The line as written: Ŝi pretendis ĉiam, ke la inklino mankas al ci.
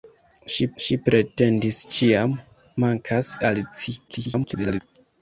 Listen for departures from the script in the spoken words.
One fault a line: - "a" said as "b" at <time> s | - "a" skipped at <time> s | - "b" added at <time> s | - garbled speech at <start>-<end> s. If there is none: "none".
- "ŝi" added at 0.8 s
- "ke la inklino" skipped at 2.4 s
- garbled speech at 4.1-4.8 s